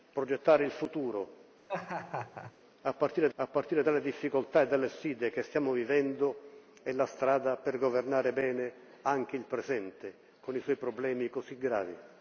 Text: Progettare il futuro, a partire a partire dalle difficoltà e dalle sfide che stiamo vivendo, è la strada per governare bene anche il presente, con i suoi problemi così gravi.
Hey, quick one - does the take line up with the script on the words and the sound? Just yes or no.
no